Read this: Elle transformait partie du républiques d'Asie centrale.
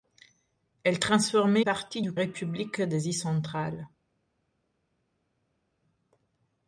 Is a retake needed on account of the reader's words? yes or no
no